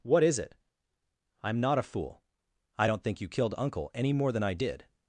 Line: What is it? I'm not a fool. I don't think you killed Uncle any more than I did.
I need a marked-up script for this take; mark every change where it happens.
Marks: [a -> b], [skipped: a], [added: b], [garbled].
What is it? I'm not a fool. I don't think you killed Uncle any more than I did.